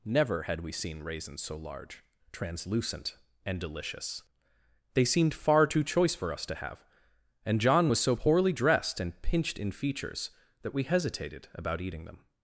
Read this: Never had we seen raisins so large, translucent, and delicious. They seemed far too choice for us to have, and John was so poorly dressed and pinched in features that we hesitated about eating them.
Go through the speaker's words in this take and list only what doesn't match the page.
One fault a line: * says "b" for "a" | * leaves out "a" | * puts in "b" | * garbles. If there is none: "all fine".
all fine